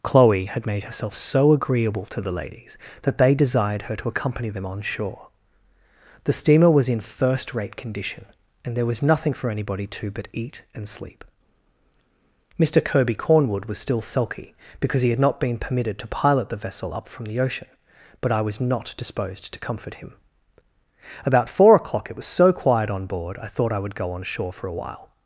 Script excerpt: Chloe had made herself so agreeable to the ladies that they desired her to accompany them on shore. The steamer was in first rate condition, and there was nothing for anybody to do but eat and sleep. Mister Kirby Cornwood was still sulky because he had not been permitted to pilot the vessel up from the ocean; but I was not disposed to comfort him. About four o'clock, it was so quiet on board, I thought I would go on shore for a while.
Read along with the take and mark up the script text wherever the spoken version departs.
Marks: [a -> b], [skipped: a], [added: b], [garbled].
Chloe had made herself so agreeable to the ladies that they desired her to accompany them on shore. The steamer was in first rate condition, and there was nothing for anybody to [skipped: do] but eat and sleep. Mister Kirby Cornwood was still sulky because he had not been permitted to pilot the vessel up from the ocean; but I was not disposed to comfort him. About four o'clock, it was so quiet on board, I thought I would go on shore for a while.